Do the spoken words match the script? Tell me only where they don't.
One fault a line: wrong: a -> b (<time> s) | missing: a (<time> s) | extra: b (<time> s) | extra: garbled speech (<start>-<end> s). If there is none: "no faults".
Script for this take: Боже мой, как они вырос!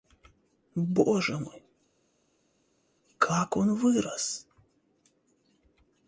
wrong: они -> он (3.6 s)